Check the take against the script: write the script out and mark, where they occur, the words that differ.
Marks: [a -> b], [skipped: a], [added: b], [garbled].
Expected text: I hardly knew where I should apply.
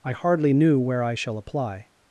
I hardly knew where I [should -> shall] apply.